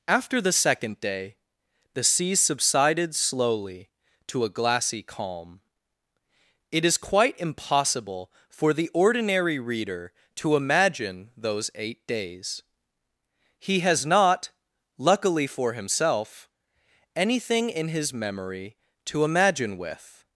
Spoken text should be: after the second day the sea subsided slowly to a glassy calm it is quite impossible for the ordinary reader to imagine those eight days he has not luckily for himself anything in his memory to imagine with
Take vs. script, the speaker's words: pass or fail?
pass